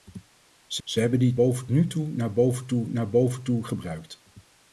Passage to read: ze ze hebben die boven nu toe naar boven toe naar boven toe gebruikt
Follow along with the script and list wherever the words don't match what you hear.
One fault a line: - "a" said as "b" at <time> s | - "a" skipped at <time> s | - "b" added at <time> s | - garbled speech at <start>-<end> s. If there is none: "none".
none